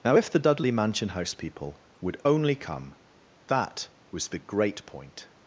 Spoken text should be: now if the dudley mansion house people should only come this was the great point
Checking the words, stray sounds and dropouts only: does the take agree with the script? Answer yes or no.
no